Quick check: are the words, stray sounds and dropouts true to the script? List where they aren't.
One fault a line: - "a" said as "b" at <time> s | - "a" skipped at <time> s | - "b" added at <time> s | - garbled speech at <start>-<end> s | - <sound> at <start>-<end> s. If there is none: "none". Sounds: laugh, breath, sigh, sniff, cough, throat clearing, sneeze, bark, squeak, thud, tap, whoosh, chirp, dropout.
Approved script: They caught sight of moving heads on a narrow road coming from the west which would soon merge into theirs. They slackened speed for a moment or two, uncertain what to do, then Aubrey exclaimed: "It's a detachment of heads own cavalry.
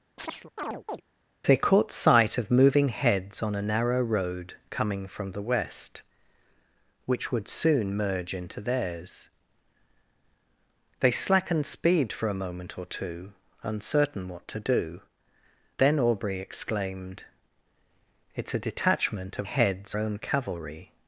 - chirp at 0.2-1.0 s